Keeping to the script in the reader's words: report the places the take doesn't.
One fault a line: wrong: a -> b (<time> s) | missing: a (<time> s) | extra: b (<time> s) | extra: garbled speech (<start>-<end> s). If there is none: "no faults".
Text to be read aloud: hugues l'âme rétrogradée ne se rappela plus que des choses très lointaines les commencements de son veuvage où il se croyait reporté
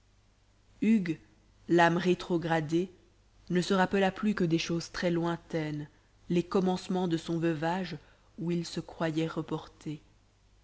no faults